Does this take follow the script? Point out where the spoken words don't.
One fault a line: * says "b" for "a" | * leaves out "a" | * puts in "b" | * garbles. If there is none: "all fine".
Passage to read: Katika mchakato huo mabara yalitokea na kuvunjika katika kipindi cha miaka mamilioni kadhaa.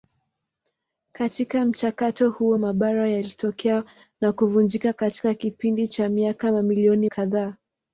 all fine